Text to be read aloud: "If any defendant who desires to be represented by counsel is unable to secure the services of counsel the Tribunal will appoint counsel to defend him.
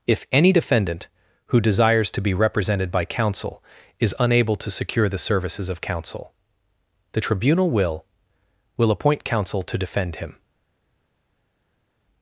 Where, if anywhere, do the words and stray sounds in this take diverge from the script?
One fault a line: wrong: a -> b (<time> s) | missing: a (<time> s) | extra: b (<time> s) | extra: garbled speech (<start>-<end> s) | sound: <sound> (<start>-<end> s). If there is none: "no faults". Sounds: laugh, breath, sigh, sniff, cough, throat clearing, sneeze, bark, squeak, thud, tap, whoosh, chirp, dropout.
extra: will (8.8 s)